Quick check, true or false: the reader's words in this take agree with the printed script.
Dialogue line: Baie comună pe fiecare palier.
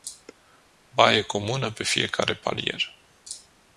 true